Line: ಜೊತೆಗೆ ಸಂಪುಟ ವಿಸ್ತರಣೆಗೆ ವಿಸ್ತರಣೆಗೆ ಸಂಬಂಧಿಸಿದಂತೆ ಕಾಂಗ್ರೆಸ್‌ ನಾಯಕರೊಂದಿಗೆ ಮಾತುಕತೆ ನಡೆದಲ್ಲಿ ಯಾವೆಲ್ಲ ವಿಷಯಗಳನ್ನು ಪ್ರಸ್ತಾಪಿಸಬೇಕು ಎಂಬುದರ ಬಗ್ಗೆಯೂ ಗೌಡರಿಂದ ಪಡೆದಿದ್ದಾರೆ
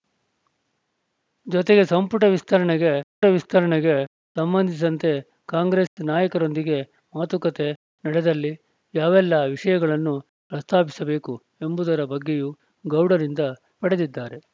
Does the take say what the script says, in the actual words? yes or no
yes